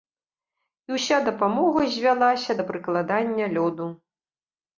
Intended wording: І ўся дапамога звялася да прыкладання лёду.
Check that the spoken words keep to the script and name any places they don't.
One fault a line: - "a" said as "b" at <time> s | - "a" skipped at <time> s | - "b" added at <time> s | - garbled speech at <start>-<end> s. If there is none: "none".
none